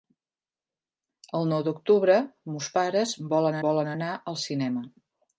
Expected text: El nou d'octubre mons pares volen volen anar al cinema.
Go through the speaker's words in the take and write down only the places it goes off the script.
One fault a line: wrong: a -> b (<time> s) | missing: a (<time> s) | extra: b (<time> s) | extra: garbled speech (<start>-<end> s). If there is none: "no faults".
no faults